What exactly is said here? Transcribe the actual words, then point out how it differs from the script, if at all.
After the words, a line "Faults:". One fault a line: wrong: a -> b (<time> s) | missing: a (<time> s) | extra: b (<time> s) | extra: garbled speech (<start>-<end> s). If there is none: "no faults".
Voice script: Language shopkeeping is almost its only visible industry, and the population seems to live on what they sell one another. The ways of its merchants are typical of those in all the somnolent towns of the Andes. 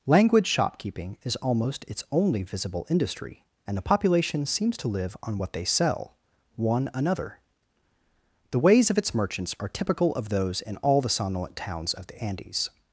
Language shopkeeping is almost its only visible industry, and the population seems to live on what they sell one another. The ways of its merchants are typical of those in all the somnolent towns of the Andes.
Faults:
no faults